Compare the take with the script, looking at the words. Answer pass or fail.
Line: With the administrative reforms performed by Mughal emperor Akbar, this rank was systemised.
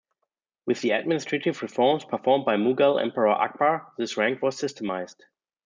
pass